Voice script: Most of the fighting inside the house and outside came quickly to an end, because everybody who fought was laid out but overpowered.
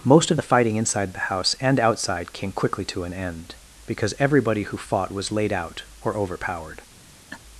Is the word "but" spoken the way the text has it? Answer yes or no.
no